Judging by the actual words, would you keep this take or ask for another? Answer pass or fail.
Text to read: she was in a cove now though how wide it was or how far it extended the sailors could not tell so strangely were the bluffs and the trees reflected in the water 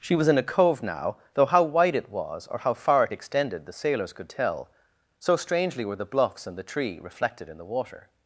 fail